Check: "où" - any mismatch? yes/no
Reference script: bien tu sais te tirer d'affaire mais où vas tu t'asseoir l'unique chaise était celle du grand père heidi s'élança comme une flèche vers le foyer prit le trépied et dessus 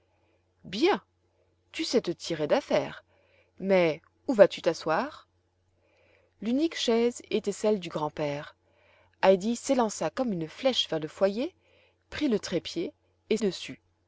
no